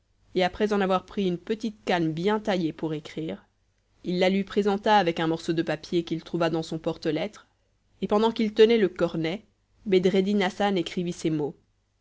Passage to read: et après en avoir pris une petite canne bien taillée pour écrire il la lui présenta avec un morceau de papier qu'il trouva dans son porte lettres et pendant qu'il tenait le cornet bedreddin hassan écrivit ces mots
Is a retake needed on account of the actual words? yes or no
no